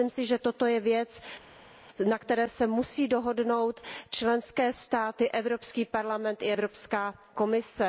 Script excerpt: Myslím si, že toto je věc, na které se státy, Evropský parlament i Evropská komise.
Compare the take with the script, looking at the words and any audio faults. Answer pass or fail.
fail